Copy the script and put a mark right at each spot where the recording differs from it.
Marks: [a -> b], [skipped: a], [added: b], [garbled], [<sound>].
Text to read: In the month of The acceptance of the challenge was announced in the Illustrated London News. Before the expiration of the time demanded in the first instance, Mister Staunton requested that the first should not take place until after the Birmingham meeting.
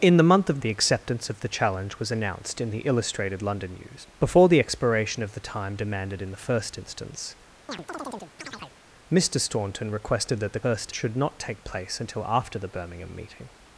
In the month of The acceptance of the challenge was announced in the Illustrated London News. Before the expiration of the time demanded in the first instance, [chirp] Mister Staunton requested that the first should not take place until after the Birmingham meeting.